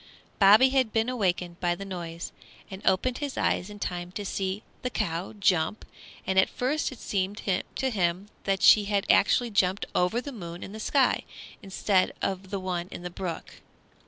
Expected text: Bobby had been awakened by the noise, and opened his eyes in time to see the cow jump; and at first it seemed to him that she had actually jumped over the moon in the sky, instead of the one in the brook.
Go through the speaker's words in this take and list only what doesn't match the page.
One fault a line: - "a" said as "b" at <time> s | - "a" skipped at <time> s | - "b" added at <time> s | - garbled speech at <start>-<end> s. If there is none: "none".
none